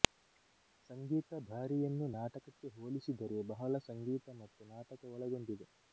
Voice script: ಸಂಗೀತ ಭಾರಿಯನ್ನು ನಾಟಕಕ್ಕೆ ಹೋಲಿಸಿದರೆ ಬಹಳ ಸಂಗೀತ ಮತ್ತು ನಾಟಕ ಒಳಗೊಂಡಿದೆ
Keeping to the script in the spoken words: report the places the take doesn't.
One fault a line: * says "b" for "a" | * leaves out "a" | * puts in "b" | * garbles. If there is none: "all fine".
all fine